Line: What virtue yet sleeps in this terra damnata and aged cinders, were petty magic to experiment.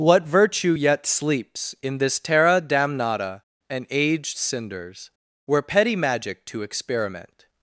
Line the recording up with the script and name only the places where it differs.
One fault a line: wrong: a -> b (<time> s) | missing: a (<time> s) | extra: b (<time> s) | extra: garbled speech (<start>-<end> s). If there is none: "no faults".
no faults